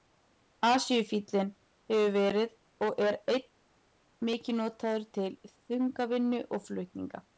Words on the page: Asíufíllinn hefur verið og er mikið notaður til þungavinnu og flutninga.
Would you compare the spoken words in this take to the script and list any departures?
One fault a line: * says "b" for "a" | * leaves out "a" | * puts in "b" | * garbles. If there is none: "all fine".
all fine